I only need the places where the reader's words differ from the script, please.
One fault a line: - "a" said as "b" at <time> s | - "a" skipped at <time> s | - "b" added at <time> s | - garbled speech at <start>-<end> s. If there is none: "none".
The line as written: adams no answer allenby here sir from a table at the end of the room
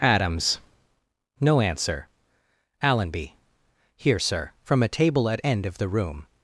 - "the" skipped at 5.4 s